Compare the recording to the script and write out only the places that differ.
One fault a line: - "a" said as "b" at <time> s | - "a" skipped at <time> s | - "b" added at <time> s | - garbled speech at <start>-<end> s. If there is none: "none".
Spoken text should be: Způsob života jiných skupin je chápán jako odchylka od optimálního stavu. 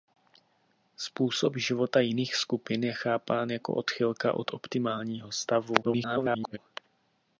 - garbled speech at 5.8-6.6 s